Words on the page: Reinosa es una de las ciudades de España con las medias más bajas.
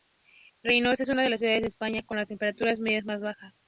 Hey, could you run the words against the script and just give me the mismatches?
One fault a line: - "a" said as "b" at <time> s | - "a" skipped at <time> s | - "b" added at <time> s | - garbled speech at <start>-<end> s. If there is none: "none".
- "temperaturas" added at 2.3 s